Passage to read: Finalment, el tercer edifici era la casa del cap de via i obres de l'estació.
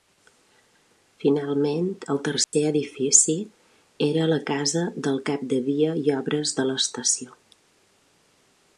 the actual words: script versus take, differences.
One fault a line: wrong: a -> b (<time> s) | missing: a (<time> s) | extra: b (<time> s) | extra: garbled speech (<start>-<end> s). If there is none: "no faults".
no faults